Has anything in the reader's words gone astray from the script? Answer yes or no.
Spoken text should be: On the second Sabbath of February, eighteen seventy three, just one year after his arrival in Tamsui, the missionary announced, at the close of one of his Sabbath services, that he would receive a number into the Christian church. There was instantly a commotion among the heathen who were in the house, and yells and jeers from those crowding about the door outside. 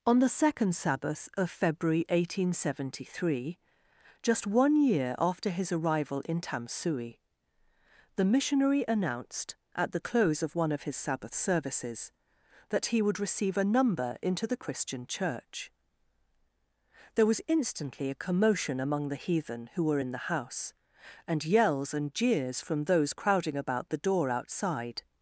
no